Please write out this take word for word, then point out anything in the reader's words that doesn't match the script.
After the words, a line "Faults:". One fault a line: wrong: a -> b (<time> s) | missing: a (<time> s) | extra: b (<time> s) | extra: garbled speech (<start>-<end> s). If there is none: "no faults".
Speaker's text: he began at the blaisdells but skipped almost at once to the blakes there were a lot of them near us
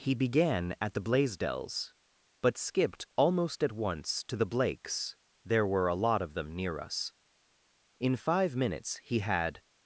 he began at the blaisdells but skipped almost at once to the blakes there were a lot of them near us in five minutes he had
Faults:
extra: in five minutes he had (8.0 s)